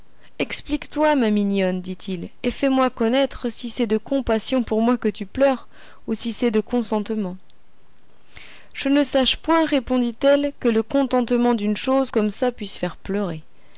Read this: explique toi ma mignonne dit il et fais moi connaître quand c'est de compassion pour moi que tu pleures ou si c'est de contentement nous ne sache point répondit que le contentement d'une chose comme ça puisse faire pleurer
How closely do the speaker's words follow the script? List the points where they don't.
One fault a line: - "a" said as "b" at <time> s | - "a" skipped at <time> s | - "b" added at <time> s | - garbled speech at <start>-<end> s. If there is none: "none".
- "quand" said as "si" at 3.5 s
- "nous" said as "je" at 8.7 s
- "elle" added at 10.2 s